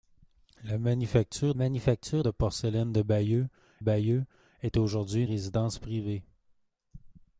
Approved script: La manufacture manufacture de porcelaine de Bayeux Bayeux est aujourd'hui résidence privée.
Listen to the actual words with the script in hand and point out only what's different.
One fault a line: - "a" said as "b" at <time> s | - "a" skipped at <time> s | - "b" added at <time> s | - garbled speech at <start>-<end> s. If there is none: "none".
none